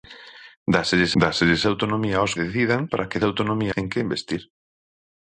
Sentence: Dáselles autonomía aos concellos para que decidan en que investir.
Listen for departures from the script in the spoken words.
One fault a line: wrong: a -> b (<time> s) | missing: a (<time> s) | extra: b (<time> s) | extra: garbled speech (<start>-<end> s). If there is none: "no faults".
extra: dáselles (1.2 s)
wrong: concellos -> decidan (2.4 s)
wrong: decidan -> autonomía (3.3 s)